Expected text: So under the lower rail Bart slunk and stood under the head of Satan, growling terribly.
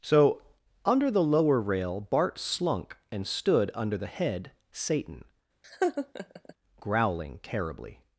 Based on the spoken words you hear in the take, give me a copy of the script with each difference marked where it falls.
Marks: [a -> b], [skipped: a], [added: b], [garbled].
So under the lower rail Bart slunk and stood under the head [skipped: of] Satan, growling terribly.